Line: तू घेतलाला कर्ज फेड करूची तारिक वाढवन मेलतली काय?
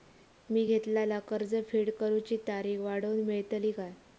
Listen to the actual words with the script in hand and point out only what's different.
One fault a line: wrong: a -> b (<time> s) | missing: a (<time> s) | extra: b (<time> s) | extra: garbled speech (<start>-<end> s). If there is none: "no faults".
wrong: तू -> मी (0.5 s)